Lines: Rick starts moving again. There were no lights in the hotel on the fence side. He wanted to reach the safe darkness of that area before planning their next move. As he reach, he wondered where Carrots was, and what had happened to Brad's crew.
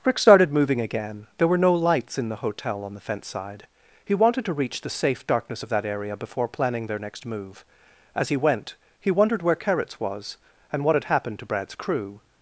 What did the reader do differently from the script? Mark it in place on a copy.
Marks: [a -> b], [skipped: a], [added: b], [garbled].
Rick [starts -> started] moving again. There were no lights in the hotel on the fence side. He wanted to reach the safe darkness of that area before planning their next move. As he [reach, -> went] he wondered where Carrots was, and what had happened to Brad's crew.